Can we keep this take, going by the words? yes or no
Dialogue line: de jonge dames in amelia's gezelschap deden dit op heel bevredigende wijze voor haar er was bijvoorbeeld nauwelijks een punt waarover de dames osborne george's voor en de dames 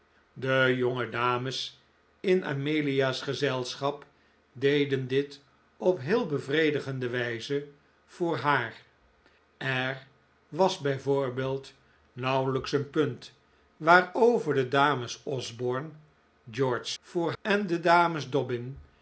yes